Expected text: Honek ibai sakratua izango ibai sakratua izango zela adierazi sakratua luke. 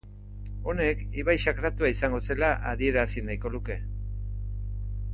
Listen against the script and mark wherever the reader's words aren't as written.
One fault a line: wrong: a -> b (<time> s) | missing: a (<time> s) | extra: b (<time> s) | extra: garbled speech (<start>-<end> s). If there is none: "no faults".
missing: ibai sakratua izango (2.2 s)
wrong: sakratua -> nahiko (3.3 s)